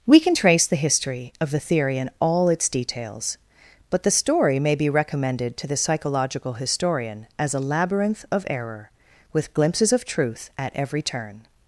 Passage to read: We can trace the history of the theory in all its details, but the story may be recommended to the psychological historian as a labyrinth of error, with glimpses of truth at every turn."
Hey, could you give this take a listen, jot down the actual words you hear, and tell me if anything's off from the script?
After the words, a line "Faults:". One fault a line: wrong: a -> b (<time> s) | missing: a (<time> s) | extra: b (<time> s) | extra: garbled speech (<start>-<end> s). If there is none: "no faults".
We can trace the history of the theory in all its details, but the story may be recommended to the psychological historian as a labyrinth of error, with glimpses of truth at every turn."
Faults:
no faults